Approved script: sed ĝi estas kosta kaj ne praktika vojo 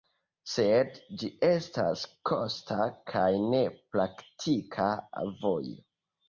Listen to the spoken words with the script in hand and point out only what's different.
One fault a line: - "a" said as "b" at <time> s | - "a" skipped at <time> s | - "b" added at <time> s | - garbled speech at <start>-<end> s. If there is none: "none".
none